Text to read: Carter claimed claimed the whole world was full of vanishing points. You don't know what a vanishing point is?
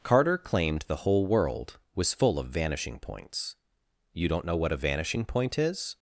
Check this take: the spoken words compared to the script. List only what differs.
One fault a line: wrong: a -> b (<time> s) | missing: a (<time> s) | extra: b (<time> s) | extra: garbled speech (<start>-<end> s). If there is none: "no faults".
missing: claimed (0.8 s)